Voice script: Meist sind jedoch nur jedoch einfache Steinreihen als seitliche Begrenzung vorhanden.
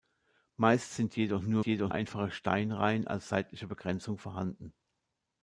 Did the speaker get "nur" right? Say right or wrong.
right